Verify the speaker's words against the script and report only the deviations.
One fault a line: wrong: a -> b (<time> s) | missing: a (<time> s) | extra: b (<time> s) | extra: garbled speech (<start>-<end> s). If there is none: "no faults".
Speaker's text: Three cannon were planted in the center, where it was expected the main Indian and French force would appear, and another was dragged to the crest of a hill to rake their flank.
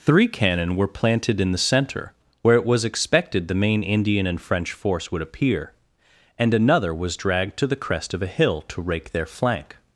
no faults